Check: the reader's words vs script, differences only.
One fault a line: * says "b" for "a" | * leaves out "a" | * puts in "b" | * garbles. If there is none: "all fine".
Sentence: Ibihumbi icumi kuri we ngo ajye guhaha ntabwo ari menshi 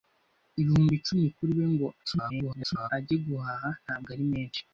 * garbles